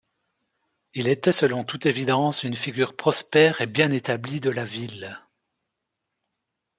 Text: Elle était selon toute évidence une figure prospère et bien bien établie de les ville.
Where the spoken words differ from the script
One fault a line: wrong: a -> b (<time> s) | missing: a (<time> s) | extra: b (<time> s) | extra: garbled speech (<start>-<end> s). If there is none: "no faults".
wrong: Elle -> Il (0.9 s)
missing: bien (3.9 s)
wrong: les -> la (4.5 s)